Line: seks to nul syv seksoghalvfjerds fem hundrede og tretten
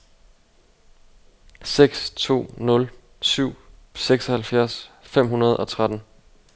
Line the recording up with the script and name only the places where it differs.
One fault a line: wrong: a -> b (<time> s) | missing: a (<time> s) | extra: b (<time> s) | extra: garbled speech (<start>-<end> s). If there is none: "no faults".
no faults